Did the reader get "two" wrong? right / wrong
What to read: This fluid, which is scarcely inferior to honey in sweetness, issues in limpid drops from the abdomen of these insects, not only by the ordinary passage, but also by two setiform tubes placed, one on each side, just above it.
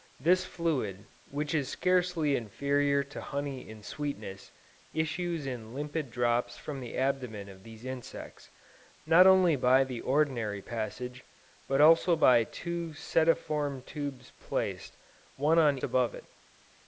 right